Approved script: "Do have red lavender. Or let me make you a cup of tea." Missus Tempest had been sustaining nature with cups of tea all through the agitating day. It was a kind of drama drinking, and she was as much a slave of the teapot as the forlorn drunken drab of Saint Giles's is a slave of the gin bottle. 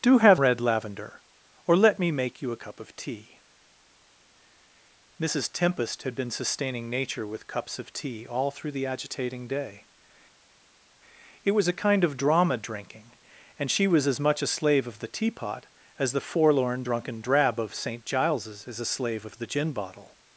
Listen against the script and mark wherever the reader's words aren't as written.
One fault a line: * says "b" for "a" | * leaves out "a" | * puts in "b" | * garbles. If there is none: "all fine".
all fine